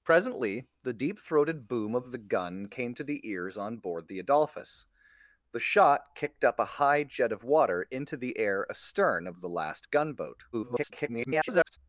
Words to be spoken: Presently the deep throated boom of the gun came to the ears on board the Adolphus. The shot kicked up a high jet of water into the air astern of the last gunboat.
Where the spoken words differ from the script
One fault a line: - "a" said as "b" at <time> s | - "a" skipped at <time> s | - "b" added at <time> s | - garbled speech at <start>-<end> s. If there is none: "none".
- garbled speech at 10.5-11.8 s